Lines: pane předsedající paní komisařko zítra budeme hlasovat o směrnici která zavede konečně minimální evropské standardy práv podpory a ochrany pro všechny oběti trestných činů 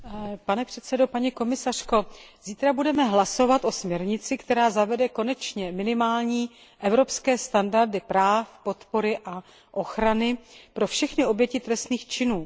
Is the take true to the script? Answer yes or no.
yes